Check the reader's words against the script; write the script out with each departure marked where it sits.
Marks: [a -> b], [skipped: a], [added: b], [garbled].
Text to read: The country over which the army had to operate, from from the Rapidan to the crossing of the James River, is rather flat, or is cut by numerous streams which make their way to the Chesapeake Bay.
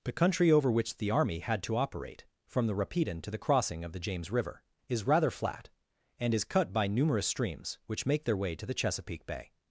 The country over which the army had to operate, from [skipped: from] the Rapidan to the crossing of the James River, is rather flat, [or -> and] is cut by numerous streams which make their way to the Chesapeake Bay.